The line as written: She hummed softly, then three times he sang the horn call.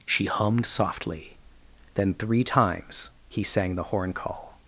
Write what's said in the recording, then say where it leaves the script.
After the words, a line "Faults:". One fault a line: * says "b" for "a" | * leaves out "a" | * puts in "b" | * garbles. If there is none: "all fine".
She hummed softly, then three times he sang the horn call.
Faults:
all fine